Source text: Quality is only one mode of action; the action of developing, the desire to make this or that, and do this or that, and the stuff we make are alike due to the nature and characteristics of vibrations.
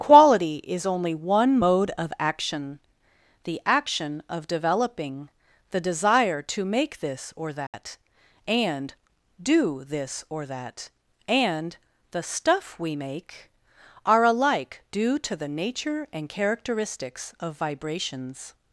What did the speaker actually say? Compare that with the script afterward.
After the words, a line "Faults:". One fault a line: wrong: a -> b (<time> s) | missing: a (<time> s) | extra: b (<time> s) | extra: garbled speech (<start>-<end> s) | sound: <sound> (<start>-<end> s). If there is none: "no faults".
Quality is only one mode of action; the action of developing, the desire to make this or that, and do this or that, and the stuff we make are alike due to the nature and characteristics of vibrations.
Faults:
sound: dropout (7.7-7.7 s)